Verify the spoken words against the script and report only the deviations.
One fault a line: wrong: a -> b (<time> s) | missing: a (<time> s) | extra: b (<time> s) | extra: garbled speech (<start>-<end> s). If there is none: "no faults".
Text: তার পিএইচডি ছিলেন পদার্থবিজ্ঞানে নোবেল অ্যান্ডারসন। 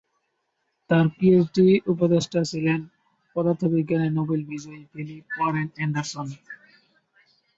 extra: উপদেষ্টা (1.9 s)
extra: বিজয়ী ফিলিপ ওয়ারেন (4.5 s)